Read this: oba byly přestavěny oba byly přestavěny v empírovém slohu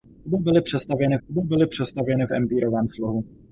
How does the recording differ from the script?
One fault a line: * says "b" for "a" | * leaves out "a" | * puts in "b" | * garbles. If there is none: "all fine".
all fine